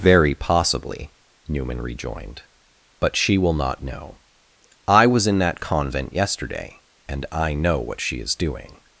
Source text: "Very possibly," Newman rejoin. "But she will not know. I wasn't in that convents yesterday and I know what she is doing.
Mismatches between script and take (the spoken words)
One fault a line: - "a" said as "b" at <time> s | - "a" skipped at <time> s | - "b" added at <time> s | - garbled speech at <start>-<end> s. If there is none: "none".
- "rejoin" said as "rejoined" at 1.8 s
- "wasn't" said as "was" at 5.0 s
- "convents" said as "convent" at 5.6 s